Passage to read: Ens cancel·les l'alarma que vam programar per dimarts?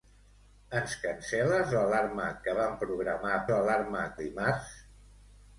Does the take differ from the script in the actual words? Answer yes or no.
yes